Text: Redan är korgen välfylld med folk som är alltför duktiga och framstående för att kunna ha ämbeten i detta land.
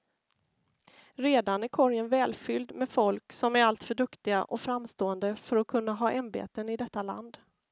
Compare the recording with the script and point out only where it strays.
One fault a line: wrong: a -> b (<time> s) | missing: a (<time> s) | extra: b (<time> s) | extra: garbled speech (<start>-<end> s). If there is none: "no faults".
no faults